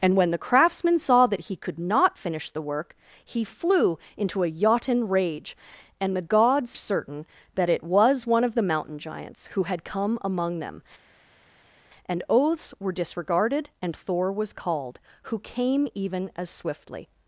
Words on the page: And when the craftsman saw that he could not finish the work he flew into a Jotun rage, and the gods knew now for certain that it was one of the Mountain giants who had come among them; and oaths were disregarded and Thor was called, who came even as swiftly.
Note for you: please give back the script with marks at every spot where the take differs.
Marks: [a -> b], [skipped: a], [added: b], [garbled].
And when the craftsman saw that he could not finish the work he flew into a Jotun rage, and the gods [skipped: knew now for] certain that it was one of the Mountain giants who had come among them; and oaths were disregarded and Thor was called, who came even as swiftly.